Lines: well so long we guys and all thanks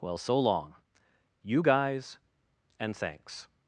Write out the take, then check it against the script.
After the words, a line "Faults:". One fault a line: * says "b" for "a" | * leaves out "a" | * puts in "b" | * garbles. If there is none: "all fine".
well so long you guys and thanks
Faults:
* says "you" for "we"
* leaves out "all"